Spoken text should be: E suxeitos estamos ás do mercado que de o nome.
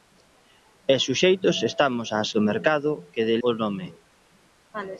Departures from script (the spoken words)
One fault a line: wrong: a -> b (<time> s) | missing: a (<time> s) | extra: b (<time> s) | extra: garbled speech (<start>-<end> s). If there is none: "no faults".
no faults